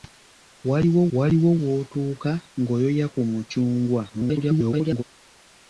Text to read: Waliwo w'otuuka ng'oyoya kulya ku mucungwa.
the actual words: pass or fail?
fail